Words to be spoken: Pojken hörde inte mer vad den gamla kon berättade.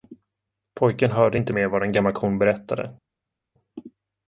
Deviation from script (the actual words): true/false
false